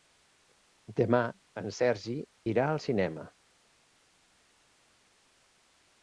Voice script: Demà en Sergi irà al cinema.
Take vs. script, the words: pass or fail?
pass